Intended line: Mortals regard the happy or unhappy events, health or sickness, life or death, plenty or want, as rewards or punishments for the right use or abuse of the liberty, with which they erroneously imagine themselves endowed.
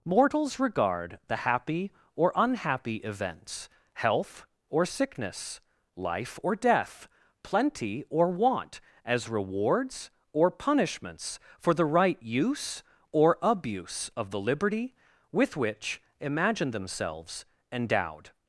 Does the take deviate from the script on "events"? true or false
false